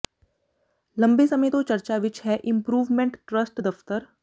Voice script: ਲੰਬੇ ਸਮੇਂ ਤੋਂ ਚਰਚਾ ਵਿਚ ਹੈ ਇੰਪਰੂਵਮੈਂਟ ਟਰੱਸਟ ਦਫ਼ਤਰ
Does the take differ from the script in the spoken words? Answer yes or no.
no